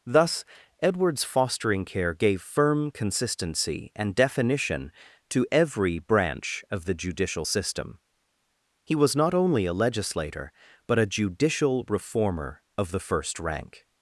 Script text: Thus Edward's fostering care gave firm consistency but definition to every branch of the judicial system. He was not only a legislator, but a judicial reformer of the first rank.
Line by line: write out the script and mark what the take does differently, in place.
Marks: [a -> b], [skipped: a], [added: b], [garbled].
Thus Edward's fostering care gave firm consistency [but -> and] definition to every branch of the judicial system. He was not only a legislator, but a judicial reformer of the first rank.